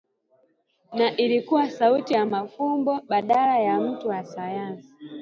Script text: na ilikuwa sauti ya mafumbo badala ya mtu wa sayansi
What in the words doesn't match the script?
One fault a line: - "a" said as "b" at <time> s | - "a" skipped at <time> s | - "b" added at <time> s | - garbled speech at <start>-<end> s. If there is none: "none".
none